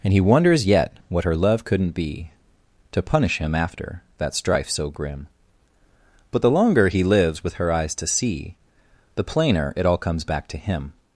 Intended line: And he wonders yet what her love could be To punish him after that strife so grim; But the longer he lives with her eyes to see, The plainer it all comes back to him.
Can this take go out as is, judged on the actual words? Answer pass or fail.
fail